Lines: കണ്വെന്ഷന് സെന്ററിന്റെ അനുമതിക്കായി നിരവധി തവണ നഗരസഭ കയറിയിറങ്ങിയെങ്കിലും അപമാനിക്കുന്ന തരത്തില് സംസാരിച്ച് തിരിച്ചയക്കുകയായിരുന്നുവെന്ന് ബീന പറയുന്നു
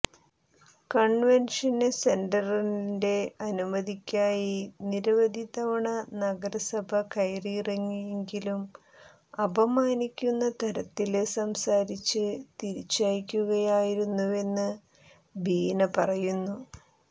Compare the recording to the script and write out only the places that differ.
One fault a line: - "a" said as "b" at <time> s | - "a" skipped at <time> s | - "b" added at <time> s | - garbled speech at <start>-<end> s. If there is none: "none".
none